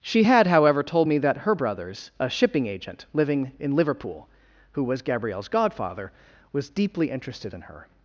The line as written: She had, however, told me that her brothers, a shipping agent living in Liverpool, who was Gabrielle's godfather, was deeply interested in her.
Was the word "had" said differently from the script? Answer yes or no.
no